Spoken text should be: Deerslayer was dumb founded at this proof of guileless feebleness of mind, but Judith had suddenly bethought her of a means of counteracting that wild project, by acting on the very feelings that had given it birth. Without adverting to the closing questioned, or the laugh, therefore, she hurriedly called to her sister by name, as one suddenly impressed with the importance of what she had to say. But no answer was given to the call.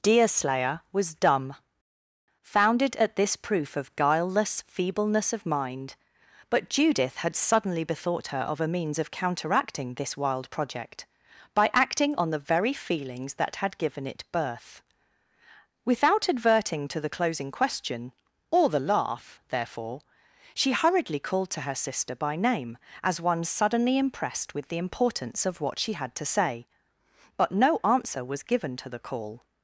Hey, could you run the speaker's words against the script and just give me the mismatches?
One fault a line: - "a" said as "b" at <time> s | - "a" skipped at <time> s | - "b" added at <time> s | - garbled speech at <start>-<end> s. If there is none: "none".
- "that" said as "this" at 9.9 s
- "questioned" said as "question" at 17.5 s